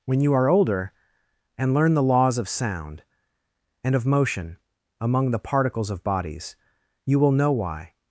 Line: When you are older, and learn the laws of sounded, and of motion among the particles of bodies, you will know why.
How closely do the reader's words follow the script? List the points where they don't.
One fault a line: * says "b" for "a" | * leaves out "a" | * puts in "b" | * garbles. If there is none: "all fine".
* says "sound" for "sounded"